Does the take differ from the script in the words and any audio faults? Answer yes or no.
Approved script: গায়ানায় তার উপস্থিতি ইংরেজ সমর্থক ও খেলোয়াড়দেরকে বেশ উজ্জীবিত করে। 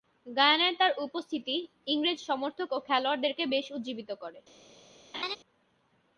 yes